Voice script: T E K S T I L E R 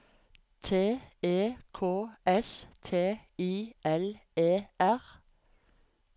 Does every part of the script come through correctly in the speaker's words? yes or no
yes